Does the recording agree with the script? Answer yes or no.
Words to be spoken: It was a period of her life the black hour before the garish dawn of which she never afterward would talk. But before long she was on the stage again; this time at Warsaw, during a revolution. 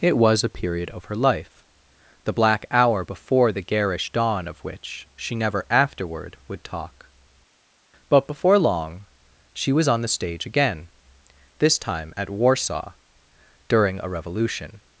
yes